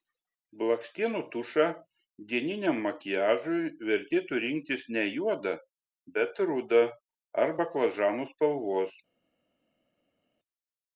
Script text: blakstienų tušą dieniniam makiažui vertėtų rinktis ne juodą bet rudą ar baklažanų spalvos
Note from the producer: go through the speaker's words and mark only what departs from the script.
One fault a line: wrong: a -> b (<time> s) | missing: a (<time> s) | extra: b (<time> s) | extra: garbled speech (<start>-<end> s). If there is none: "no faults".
no faults